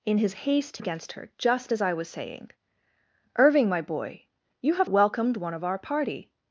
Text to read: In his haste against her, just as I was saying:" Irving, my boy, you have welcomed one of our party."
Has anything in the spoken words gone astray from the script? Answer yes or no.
no